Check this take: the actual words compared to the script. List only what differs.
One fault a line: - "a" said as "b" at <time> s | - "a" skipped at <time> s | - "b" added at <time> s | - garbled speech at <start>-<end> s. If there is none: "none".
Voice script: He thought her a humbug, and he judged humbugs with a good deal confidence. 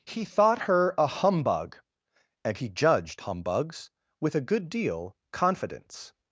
none